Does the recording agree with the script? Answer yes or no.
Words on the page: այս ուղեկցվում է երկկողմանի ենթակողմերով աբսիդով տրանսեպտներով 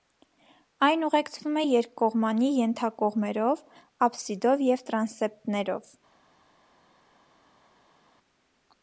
no